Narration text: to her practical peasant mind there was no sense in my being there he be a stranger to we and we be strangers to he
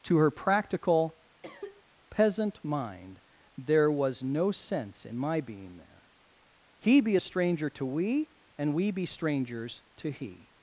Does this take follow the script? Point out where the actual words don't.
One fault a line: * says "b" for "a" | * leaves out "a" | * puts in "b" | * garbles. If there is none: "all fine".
all fine